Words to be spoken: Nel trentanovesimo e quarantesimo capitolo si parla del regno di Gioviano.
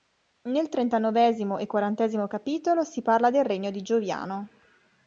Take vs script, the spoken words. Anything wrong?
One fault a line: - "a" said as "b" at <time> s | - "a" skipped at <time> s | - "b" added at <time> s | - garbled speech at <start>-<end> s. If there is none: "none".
none